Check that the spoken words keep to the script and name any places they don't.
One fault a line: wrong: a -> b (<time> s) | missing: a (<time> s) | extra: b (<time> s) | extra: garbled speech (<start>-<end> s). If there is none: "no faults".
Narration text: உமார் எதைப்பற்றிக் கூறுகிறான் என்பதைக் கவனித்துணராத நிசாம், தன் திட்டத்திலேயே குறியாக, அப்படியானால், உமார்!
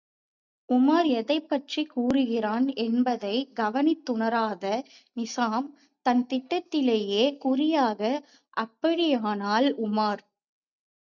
no faults